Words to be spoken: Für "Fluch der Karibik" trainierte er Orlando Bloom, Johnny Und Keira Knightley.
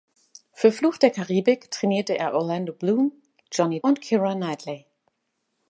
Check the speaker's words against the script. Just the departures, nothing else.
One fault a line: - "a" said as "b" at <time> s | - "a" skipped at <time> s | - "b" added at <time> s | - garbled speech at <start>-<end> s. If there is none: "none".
none